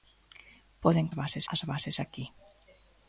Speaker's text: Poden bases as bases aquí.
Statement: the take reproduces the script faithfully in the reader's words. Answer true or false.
true